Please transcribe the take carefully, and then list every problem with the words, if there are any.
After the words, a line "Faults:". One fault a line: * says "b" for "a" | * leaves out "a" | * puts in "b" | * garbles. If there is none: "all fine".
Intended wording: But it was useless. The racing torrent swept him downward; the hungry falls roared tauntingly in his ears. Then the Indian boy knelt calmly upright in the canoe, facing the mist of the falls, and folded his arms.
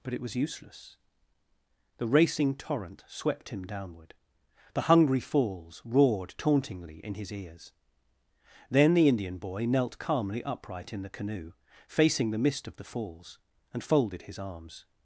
But it was useless. The racing torrent swept him downward; the hungry falls roared tauntingly in his ears. Then the Indian boy knelt calmly upright in the canoe, facing the mist of the falls, and folded his arms.
Faults:
all fine